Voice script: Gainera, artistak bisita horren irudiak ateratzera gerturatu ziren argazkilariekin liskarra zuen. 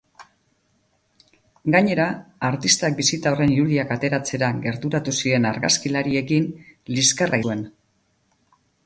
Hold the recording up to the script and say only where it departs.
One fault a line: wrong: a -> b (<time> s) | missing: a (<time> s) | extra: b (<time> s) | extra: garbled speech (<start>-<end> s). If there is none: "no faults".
no faults